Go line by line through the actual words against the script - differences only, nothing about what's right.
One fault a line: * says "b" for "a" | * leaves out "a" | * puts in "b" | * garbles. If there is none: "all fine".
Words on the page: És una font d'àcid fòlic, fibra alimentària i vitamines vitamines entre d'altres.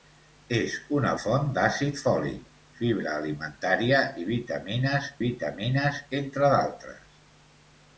all fine